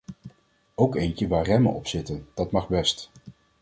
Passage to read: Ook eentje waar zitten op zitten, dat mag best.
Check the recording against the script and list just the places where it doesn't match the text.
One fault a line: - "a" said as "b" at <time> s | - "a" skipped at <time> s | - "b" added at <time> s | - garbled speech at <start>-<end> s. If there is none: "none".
- "zitten" said as "remmen" at 1.4 s